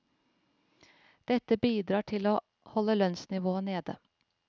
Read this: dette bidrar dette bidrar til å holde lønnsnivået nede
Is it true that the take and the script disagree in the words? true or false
true